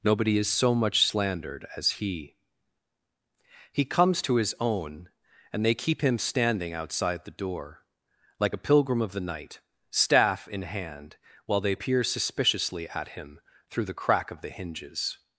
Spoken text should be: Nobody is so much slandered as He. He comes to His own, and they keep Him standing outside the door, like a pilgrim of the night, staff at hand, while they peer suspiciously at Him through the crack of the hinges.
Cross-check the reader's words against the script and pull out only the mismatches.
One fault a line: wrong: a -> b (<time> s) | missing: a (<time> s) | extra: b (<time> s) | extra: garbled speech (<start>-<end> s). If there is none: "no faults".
wrong: at -> in (10.5 s)